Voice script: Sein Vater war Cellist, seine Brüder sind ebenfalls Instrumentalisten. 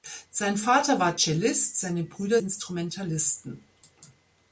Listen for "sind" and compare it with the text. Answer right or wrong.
wrong